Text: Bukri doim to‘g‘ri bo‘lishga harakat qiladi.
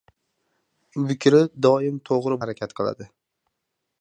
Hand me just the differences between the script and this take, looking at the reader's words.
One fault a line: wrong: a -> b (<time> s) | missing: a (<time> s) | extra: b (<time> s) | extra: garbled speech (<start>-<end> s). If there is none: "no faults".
missing: bo‘lishga (2.4 s)